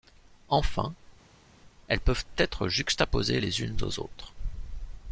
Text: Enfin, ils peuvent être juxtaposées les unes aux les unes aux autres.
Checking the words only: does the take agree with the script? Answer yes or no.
no